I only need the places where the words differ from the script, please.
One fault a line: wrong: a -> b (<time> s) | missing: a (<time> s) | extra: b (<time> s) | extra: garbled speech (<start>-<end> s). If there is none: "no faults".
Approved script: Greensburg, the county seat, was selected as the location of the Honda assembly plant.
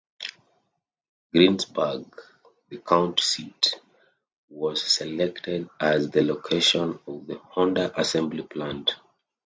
no faults